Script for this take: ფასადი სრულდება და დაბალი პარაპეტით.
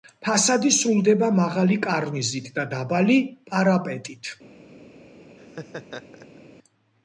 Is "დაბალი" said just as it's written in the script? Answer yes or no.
yes